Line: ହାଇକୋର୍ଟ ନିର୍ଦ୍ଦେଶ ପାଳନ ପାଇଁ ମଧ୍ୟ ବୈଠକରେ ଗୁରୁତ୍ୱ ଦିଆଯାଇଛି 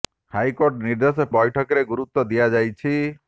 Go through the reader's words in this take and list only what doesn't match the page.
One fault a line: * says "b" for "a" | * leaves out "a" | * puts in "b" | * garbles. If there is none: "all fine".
* leaves out "ପାଳନ ପାଇଁ ମଧ୍ୟ"